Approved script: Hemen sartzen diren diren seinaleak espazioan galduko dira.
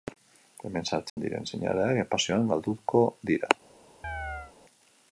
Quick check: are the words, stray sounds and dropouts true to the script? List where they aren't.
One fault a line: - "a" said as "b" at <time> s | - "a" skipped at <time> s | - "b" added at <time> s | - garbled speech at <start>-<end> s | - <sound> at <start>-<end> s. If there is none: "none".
- dropout at 1.1-1.2 s
- "diren" skipped at 1.4 s
- chirp at 4.0-4.5 s